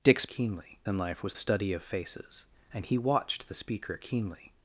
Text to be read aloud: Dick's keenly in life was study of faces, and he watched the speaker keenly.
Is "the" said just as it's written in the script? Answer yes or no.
yes